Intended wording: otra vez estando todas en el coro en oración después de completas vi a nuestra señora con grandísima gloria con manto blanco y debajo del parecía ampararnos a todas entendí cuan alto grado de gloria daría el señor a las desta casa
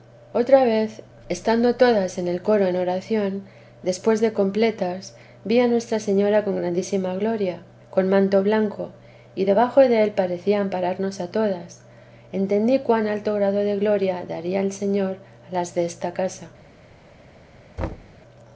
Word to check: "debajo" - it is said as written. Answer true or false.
true